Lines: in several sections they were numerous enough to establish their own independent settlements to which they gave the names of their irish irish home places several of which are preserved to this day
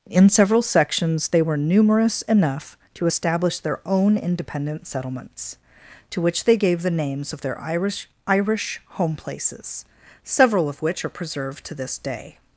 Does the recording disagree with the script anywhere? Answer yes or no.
no